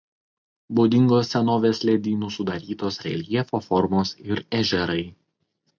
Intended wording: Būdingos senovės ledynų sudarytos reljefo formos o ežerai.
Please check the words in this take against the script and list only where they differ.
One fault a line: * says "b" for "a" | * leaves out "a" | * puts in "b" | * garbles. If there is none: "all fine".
* says "ir" for "o"